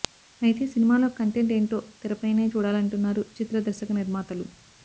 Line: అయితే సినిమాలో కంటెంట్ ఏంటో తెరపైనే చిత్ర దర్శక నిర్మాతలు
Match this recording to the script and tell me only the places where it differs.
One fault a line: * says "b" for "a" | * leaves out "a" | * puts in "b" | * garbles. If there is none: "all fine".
* puts in "చూడాలంటున్నారు"